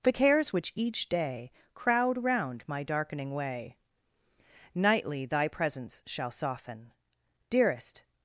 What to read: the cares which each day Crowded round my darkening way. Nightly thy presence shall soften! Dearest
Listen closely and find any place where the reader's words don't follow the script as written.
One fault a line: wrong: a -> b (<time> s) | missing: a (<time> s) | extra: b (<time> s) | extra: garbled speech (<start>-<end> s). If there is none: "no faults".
wrong: Crowded -> Crowd (1.7 s)